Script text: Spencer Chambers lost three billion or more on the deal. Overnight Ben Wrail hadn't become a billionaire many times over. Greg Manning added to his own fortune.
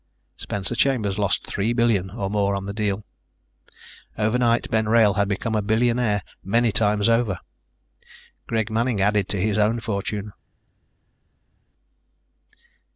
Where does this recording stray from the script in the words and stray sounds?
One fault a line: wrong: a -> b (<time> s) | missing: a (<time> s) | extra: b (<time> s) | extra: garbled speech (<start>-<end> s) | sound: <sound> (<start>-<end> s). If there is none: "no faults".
wrong: hadn't -> had (5.1 s)